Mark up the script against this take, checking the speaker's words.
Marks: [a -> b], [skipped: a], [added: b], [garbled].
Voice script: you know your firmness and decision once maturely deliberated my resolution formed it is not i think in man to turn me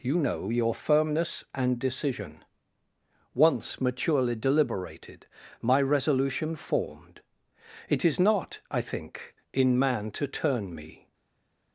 you know your firmness and decision once maturely deliberated my resolution formed it is not i think in man to turn me